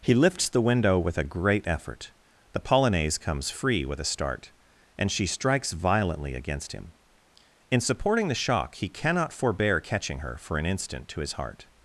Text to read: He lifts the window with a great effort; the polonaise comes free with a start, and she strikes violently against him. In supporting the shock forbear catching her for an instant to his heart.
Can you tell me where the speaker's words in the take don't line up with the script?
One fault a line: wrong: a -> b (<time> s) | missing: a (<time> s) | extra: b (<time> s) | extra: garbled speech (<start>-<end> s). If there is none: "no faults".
extra: he cannot (8.8 s)